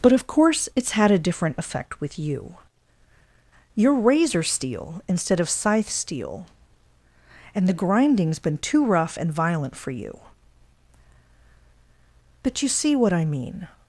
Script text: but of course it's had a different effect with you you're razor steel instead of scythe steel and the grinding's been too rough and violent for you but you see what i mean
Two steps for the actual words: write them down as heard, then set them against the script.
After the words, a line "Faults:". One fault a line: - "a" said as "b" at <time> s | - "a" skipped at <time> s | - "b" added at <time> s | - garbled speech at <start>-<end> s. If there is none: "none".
but of course it's had a different effect with you you're razor steel instead of scythe steel and the grinding's been too rough and violent for you but you see what i mean
Faults:
none